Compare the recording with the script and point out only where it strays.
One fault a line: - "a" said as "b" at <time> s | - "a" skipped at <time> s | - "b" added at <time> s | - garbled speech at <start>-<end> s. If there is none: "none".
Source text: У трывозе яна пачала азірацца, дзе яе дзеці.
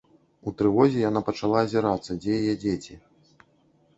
none